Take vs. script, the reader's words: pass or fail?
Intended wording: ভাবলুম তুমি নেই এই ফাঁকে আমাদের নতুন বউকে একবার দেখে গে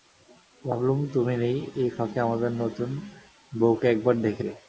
pass